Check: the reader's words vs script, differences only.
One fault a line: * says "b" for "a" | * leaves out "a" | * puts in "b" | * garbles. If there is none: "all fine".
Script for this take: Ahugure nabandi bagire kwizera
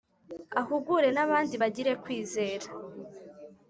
all fine